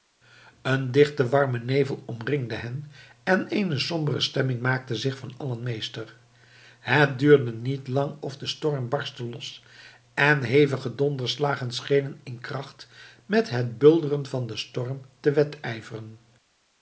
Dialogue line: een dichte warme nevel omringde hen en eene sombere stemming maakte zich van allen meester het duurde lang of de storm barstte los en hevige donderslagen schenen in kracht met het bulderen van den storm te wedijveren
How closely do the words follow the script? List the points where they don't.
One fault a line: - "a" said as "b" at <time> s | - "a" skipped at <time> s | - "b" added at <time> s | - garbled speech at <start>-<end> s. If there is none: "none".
- "niet" added at 7.5 s